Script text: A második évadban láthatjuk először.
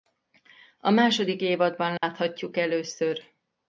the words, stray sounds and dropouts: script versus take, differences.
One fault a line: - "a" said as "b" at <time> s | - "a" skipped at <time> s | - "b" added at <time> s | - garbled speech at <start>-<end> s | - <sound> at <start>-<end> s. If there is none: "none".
- dropout at 2.0-2.0 s